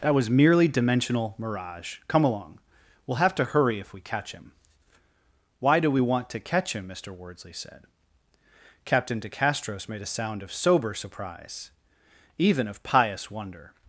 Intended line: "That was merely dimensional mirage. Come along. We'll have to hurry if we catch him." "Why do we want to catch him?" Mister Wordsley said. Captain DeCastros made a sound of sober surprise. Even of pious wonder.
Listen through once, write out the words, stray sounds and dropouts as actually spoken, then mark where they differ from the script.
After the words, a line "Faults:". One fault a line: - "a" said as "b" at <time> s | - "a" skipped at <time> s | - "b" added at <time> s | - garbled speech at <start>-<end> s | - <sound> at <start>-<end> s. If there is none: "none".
"That was merely dimensional mirage. Come along. We'll have to hurry if we catch him." "Why do we want to catch him?" Mister Wordsley said. Captain DeCastros made a sound of sober surprise. Even of pious wonder.
Faults:
none